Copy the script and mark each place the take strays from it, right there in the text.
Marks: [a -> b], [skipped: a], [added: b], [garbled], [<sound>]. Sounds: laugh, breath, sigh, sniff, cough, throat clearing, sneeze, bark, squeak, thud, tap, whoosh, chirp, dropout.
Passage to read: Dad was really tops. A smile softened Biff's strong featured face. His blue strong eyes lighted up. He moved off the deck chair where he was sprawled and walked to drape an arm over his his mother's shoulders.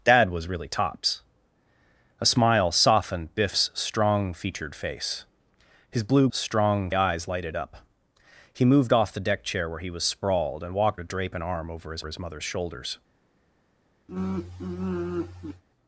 Dad was really tops. A smile softened Biff's strong featured face. His blue strong eyes lighted up. He moved off the deck chair where he was sprawled and walked to drape an arm over his his mother's shoulders. [sigh]